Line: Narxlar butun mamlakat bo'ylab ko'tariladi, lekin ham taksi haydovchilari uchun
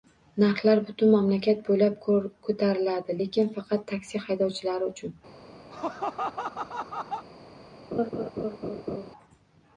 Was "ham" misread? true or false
true